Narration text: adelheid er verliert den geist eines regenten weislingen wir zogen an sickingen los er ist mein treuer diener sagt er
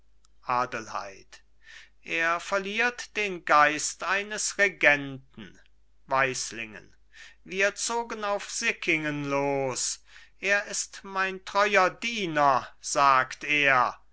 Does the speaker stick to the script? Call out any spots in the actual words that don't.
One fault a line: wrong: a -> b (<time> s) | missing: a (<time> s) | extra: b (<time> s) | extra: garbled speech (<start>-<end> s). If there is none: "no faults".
wrong: an -> auf (8.2 s)